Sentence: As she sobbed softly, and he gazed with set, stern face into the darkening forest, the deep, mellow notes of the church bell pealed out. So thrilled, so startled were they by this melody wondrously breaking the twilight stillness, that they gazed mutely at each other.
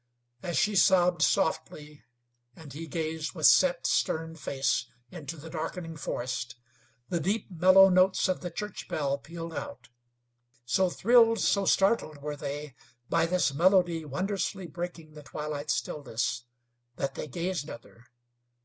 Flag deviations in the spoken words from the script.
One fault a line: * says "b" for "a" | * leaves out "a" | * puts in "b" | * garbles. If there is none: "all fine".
* leaves out "mutely at each"